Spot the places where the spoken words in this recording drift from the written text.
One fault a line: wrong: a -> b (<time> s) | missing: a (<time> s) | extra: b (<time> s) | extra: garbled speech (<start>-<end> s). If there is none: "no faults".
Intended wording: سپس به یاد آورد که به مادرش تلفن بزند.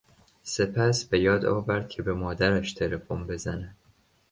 no faults